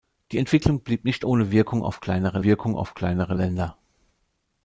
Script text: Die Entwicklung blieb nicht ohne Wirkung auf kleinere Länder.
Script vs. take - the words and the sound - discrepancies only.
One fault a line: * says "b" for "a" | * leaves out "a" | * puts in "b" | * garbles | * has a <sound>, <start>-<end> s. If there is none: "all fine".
* puts in "Wirkung auf kleinere"